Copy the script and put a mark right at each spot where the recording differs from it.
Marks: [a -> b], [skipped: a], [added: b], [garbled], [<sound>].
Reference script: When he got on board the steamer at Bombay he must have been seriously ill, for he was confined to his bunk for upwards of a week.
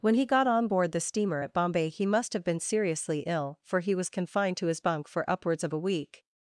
When he got on board the steamer at Bombay he must have been seriously ill, for he was confined to his bunk for upwards of a week.